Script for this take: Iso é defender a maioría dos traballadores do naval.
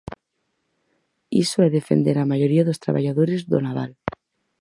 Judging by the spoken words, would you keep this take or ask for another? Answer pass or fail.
pass